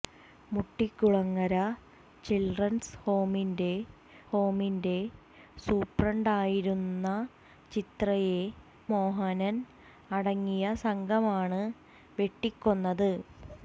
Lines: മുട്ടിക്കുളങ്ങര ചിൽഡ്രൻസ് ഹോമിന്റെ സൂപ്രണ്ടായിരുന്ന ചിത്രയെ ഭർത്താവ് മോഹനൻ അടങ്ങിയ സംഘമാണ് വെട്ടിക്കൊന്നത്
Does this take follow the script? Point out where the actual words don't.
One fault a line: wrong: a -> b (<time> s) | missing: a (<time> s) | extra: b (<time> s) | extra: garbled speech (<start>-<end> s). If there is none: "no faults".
extra: ഹോമിന്റെ (4.3 s)
missing: ഭർത്താവ് (8.4 s)